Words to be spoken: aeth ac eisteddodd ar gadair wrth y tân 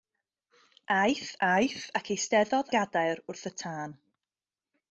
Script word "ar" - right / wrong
wrong